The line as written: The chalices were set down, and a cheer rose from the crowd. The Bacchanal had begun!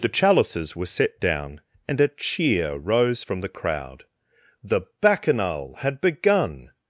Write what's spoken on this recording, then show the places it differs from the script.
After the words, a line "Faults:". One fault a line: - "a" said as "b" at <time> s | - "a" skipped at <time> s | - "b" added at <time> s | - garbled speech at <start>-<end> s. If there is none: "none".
The chalices were set down, and a cheer rose from the crowd. The Bacchanal had begun!
Faults:
none